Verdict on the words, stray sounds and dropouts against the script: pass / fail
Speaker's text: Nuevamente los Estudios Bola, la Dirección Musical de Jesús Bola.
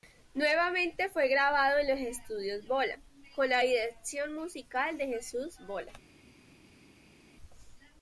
fail